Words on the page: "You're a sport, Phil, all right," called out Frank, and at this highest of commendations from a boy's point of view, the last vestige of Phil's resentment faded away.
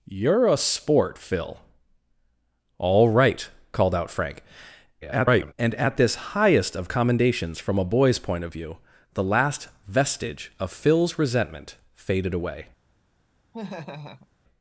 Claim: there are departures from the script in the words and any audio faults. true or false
true